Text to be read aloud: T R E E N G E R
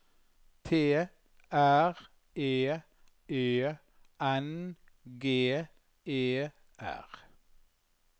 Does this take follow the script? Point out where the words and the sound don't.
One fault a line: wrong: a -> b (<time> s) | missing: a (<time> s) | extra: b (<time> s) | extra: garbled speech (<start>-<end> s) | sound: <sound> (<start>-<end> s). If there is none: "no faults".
no faults